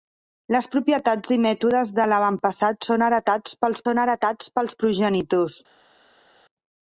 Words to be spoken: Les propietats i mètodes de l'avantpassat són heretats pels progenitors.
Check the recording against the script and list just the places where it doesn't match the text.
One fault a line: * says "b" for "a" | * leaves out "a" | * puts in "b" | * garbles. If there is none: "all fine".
* puts in "són heretats pels"